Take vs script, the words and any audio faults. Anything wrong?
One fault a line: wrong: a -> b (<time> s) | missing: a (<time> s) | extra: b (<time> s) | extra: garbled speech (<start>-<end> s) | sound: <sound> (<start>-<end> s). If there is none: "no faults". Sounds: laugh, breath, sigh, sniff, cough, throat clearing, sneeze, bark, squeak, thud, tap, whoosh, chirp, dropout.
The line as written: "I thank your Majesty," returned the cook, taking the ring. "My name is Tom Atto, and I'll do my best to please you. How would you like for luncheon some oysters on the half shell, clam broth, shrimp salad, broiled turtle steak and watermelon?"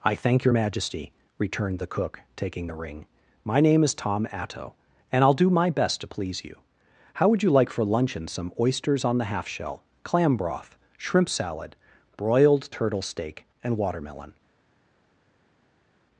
no faults